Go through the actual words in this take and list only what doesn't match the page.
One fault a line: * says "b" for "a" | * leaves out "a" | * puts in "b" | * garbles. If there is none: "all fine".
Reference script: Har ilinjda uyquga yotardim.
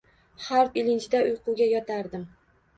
all fine